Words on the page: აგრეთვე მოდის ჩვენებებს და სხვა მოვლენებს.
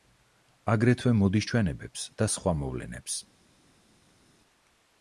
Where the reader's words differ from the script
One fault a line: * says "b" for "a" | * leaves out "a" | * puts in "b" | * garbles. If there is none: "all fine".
all fine